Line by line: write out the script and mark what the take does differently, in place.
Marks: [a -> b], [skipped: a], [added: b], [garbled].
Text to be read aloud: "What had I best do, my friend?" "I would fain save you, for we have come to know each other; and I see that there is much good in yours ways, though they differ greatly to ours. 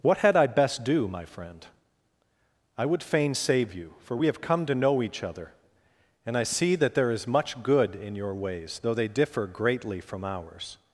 "What had I best do, my friend?" "I would fain save you, for we have come to know each other; and I see that there is much good in [yours -> your] ways, though they differ greatly [to -> from] ours.